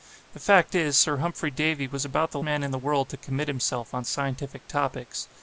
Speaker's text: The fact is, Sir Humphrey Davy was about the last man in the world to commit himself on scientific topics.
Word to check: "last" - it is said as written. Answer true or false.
false